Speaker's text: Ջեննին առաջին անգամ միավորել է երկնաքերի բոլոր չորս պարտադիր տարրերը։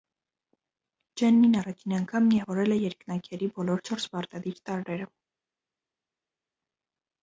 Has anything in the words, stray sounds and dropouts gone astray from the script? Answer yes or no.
no